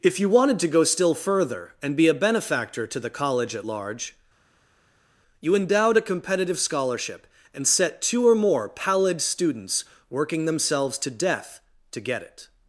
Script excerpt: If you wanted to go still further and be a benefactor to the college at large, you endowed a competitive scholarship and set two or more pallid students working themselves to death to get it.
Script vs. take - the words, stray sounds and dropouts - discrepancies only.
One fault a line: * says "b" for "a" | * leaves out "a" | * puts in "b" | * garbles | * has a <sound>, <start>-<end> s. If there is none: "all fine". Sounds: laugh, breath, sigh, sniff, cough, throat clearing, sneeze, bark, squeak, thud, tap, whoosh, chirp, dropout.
all fine